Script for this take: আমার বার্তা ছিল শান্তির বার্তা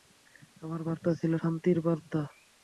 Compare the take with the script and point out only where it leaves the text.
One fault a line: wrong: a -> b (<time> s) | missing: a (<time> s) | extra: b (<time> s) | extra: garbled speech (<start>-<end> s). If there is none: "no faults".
no faults